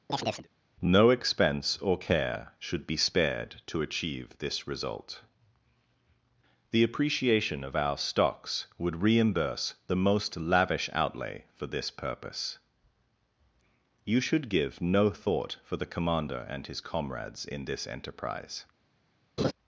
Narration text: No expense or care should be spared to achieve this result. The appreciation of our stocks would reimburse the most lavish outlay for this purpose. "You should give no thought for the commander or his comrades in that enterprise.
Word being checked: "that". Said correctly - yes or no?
no